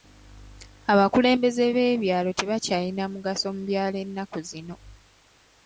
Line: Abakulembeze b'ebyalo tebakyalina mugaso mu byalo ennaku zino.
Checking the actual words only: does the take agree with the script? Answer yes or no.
yes